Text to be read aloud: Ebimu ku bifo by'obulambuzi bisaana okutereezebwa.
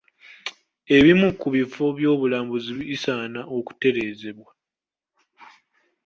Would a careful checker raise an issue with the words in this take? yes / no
no